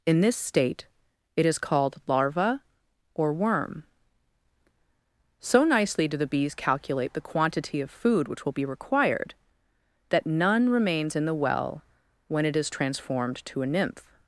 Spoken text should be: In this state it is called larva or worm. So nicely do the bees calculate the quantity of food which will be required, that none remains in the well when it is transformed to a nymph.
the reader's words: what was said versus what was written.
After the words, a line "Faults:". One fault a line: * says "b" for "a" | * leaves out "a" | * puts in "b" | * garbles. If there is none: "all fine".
In this state it is called larva or worm. So nicely do the bees calculate the quantity of food which will be required, that none remains in the well when it is transformed to a nymph.
Faults:
all fine